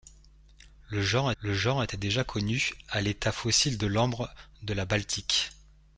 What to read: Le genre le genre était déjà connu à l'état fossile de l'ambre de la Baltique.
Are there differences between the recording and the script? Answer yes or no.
no